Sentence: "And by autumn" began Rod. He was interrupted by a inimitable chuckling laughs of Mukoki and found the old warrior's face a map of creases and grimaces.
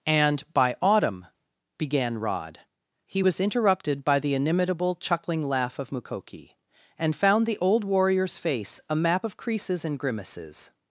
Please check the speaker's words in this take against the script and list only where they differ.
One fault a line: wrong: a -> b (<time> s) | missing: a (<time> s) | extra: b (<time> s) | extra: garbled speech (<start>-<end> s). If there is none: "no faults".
wrong: a -> the (4.2 s)
wrong: laughs -> laugh (5.4 s)